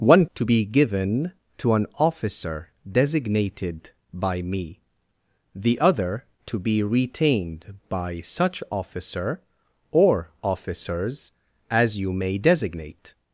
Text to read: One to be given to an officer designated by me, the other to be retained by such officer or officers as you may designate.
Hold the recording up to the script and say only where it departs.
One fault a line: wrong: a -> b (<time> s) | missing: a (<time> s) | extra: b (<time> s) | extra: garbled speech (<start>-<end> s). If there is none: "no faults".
no faults